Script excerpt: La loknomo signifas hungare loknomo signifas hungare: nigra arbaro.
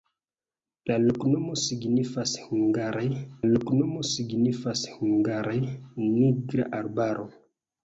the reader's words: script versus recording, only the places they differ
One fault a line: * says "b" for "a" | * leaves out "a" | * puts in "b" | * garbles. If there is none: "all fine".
all fine